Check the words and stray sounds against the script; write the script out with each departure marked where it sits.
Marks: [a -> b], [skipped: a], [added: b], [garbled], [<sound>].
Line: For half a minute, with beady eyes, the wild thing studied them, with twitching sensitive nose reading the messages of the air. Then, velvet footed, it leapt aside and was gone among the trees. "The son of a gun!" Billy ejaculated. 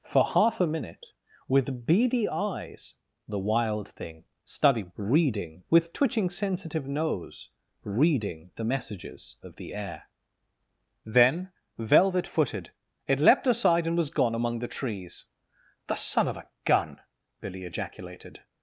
For half a minute, with beady eyes, the wild thing studied [them, -> reading] with twitching sensitive nose reading the messages of the air. Then, velvet footed, it leapt aside and was gone among the trees. "The son of a gun!" Billy ejaculated.